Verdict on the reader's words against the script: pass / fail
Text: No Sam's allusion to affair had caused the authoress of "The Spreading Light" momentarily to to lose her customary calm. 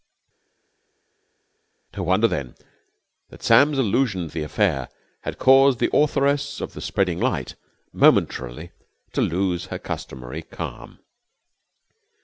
fail